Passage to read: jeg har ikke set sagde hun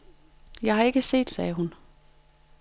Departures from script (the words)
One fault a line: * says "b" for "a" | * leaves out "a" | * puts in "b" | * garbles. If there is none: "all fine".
all fine